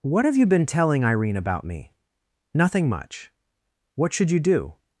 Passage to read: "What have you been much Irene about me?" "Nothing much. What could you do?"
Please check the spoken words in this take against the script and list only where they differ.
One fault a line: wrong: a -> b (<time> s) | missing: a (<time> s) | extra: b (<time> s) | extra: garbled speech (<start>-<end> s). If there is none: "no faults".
wrong: much -> telling (0.7 s)
wrong: could -> should (4.1 s)